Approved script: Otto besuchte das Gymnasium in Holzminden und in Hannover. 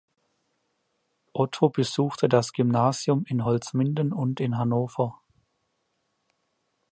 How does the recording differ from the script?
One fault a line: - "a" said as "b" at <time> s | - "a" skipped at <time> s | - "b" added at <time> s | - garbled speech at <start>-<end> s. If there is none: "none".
none